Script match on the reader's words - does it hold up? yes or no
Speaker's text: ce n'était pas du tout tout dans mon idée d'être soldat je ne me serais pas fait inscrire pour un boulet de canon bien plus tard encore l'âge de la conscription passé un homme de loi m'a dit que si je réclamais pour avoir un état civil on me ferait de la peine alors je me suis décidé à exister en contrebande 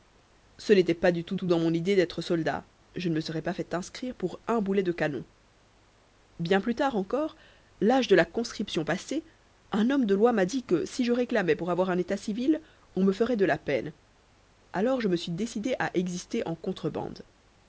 yes